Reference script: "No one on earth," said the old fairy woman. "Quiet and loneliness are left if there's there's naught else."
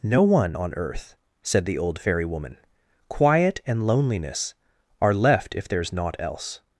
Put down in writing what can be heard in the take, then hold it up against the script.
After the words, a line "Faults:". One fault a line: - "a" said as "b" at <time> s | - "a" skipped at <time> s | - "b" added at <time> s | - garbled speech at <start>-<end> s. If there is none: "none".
"No one on earth," said the old fairy woman. "Quiet and loneliness are left if there's naught else."
Faults:
- "there's" skipped at 5.9 s